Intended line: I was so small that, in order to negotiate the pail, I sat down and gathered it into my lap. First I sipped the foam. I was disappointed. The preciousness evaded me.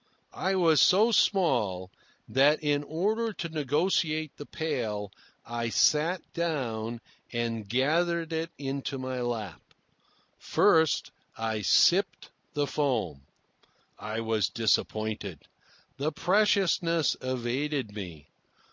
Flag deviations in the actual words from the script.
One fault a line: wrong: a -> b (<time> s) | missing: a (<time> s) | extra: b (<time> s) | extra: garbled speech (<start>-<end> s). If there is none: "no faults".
no faults